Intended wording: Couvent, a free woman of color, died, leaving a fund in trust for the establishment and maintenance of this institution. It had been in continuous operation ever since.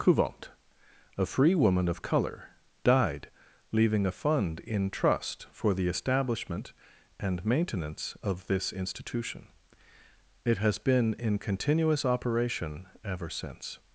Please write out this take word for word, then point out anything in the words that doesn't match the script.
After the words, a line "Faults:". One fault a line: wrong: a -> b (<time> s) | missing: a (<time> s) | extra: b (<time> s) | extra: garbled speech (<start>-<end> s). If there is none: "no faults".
Couvent, a free woman of color, died, leaving a fund in trust for the establishment and maintenance of this institution. It has been in continuous operation ever since.
Faults:
wrong: had -> has (10.6 s)